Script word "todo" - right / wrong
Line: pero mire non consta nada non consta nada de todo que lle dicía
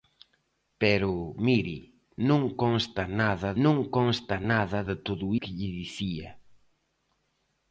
right